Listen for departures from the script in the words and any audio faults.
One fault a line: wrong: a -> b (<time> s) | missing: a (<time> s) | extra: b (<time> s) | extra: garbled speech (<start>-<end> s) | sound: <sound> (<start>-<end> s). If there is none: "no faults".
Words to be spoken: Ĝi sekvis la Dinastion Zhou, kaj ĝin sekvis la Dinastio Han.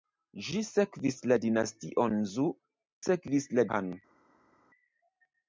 missing: kaj ĝin (2.5 s)
missing: Dinastio (3.7 s)